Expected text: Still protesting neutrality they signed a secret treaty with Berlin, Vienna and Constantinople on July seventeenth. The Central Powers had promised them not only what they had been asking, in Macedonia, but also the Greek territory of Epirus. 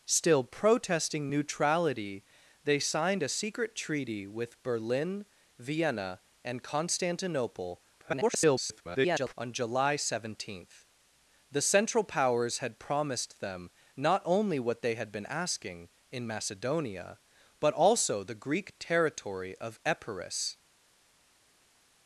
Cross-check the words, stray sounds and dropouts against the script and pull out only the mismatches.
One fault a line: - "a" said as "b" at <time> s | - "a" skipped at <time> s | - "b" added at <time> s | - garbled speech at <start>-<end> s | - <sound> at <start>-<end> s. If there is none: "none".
- garbled speech at 8.0-9.3 s